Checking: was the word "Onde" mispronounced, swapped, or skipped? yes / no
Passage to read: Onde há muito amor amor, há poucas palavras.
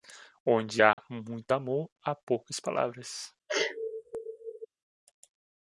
no